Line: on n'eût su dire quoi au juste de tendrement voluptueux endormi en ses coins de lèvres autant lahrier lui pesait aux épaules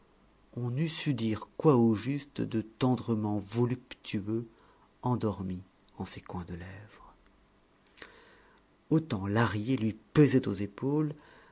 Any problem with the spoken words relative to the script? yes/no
no